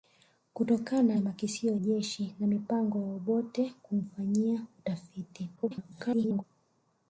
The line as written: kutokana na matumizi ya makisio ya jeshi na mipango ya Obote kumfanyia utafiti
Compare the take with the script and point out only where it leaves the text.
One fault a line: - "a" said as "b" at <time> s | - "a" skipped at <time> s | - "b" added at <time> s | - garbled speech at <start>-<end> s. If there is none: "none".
- "na matumizi" skipped at 1.2 s
- "ya" skipped at 1.7 s
- garbled speech at 5.6-6.4 s